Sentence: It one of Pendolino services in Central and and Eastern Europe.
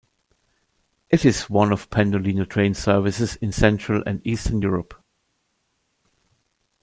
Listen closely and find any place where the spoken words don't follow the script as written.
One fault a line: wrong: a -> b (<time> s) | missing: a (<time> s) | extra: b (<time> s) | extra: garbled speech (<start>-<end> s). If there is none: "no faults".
extra: is (1.2 s)
extra: train (2.5 s)
missing: and (4.2 s)